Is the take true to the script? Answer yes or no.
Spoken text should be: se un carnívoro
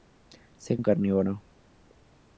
yes